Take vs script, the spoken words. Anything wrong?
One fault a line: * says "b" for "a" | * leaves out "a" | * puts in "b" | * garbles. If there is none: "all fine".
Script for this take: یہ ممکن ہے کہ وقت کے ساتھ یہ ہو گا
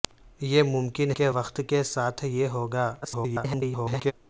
* leaves out "ہے"
* garbles